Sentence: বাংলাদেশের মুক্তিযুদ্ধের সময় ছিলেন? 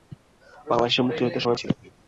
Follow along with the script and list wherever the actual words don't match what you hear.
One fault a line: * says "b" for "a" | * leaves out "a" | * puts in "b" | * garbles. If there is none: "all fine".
all fine